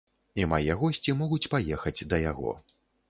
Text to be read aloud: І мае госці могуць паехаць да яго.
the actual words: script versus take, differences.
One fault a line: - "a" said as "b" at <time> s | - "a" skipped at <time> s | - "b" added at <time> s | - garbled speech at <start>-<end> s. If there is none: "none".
none